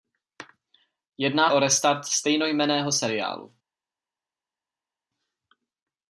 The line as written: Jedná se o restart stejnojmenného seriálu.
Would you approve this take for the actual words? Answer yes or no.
no